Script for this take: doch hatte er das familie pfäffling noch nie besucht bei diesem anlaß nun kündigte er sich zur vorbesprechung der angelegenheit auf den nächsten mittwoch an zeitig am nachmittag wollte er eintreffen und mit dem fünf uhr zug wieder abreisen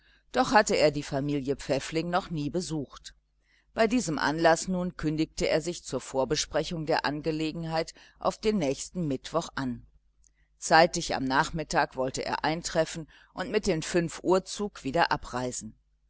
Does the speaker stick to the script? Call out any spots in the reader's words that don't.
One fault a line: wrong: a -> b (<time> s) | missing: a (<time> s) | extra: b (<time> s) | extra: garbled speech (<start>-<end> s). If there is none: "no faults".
wrong: das -> die (0.9 s)